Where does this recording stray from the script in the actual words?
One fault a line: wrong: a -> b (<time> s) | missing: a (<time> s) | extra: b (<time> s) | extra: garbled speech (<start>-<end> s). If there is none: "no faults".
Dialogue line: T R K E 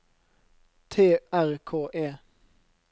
no faults